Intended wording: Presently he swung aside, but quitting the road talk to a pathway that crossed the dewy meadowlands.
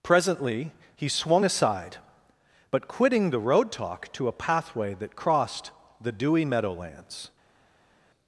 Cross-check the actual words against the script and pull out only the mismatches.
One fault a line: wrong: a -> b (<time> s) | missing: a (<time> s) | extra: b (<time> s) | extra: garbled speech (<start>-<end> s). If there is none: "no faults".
no faults